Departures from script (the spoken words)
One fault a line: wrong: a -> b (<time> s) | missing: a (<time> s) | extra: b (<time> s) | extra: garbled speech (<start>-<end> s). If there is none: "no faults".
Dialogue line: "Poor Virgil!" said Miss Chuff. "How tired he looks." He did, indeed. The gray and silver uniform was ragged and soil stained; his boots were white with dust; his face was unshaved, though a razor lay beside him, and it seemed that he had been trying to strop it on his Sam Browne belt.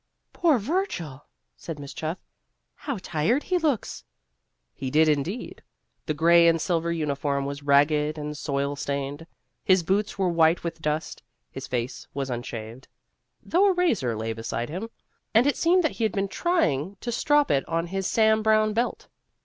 no faults